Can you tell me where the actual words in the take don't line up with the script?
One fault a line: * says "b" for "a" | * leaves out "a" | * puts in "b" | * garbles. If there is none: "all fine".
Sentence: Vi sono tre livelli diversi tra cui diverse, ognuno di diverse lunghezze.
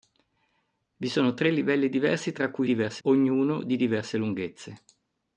all fine